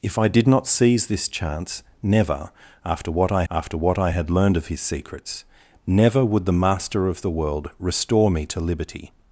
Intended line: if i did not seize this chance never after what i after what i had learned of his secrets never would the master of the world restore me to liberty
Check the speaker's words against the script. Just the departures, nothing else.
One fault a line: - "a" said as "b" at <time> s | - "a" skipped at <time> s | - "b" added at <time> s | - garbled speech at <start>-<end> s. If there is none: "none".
none